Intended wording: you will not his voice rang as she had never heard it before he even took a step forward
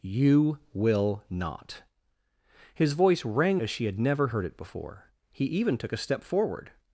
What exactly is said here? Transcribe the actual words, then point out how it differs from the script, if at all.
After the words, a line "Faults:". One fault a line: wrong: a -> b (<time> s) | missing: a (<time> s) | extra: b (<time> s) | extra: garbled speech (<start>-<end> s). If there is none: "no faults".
you will not his voice rang as she had never heard it before he even took a step forward
Faults:
no faults